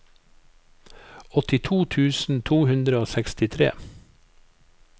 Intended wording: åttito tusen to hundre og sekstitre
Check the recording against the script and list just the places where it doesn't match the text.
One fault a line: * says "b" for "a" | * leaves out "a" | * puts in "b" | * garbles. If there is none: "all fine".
all fine